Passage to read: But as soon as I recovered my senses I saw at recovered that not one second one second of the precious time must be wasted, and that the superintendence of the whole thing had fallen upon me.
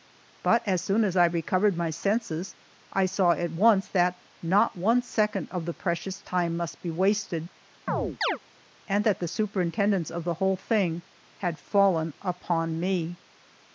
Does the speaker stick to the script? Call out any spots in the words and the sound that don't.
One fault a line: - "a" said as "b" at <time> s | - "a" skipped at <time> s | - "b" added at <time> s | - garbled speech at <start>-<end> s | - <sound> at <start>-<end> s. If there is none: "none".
- "recovered" said as "once" at 3.5 s
- "one second" skipped at 5.5 s
- chirp at 7.9-8.4 s